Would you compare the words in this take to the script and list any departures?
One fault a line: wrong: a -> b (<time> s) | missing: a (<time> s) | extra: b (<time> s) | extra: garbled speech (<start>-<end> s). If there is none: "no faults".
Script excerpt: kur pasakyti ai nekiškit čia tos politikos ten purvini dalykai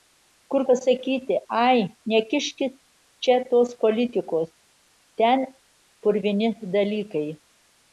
no faults